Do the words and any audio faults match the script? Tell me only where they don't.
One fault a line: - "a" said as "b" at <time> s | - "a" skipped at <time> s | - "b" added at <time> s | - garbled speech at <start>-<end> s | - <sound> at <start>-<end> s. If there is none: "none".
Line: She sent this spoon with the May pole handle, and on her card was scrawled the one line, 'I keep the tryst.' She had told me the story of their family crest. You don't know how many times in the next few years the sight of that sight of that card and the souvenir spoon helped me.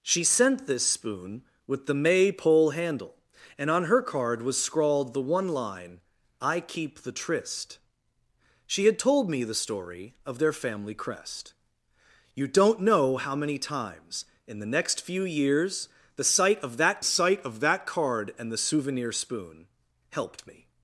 none